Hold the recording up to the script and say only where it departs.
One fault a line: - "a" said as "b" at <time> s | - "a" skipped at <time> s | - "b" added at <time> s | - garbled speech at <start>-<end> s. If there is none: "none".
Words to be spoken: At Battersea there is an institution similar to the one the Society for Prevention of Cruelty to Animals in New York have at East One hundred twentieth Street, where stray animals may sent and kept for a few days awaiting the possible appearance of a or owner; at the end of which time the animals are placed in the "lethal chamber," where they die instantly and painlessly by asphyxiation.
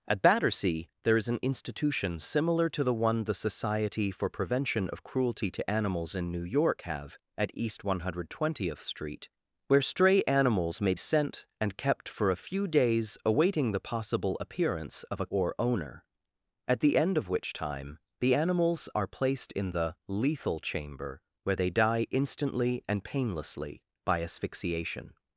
none